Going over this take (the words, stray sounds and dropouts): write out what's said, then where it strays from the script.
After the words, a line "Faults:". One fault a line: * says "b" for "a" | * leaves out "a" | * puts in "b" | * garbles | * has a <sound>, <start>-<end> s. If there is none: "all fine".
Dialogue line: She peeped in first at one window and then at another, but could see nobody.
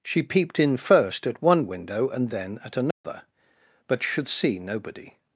She peeped in first at one window and then at another, but should see nobody.
Faults:
* has a dropout, 2.9-3.0 s
* says "should" for "could"